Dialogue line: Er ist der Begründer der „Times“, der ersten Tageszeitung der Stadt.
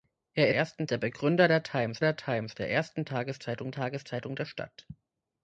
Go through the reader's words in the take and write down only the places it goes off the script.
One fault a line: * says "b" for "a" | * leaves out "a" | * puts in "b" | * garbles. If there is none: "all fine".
* says "ersten" for "ist"
* puts in "Times der"
* puts in "Tageszeitung"